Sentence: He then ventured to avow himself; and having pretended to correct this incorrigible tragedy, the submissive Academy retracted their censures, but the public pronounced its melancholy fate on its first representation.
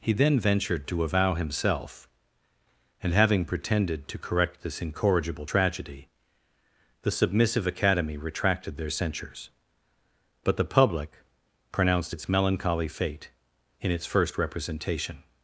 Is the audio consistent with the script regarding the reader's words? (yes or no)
no